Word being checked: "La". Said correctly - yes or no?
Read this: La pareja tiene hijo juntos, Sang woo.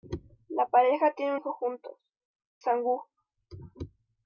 yes